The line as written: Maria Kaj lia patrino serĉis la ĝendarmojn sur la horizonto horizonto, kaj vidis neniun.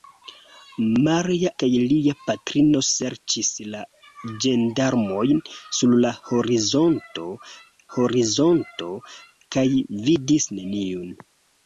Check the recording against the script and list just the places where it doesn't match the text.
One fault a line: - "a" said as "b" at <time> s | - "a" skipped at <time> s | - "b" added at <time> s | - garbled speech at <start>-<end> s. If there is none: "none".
none